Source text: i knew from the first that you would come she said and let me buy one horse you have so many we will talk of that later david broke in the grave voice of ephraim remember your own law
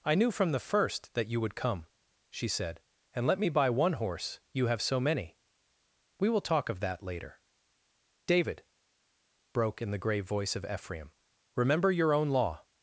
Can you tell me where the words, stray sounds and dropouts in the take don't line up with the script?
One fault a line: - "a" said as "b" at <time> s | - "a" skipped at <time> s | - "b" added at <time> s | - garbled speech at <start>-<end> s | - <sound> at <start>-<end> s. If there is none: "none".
none